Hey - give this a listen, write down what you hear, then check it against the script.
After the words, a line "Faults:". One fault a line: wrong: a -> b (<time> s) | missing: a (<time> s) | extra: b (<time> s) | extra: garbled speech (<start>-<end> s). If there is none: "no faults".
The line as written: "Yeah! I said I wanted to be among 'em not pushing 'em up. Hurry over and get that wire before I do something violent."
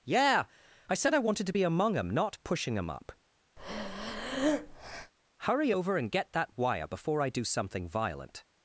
"Yeah! I said I wanted to be among 'em not pushing 'em up. Hurry over and get that wire before I do something violent."
Faults:
no faults